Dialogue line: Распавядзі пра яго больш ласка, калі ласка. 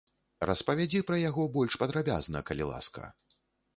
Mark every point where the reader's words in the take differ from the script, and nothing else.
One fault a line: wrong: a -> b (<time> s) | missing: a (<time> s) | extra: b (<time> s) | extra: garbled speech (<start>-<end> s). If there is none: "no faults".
wrong: ласка -> падрабязна (1.8 s)